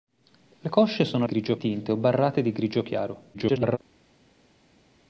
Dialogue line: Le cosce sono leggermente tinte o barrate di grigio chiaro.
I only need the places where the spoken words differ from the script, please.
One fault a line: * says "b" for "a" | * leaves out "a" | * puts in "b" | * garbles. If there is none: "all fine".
* says "grigio" for "leggermente"
* garbles